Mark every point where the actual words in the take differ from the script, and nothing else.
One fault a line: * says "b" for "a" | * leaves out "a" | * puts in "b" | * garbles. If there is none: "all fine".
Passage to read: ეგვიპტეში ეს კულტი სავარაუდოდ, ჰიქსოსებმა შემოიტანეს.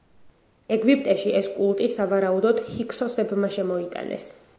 all fine